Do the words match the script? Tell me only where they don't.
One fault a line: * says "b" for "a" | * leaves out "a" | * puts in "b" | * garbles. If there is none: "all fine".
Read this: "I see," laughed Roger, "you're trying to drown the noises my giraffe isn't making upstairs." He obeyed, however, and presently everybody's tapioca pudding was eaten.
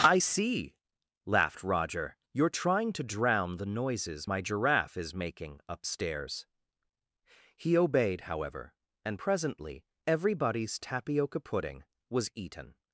* says "is" for "isn't"